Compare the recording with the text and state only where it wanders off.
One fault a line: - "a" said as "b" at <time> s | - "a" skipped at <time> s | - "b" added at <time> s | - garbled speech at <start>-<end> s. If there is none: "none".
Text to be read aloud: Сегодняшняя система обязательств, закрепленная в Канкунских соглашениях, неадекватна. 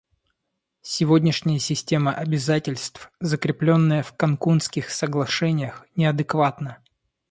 none